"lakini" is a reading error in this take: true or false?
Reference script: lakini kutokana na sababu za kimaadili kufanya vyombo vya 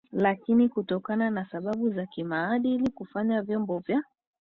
false